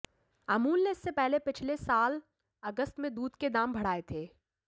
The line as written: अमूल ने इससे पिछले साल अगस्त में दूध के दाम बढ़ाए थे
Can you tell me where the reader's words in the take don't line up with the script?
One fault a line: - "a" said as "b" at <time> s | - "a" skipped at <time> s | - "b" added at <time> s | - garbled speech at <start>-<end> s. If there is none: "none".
- "पहले" added at 1.1 s